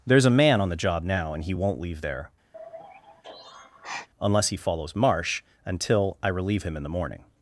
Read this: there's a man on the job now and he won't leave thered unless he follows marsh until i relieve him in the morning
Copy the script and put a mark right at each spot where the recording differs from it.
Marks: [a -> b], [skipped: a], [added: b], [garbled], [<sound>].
there's a man on the job now and he won't leave [thered -> there] [sigh] unless he follows marsh until i relieve him in the morning